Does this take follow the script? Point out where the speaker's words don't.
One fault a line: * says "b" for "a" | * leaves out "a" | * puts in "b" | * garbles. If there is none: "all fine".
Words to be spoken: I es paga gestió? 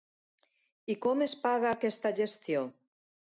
* puts in "com"
* puts in "aquesta"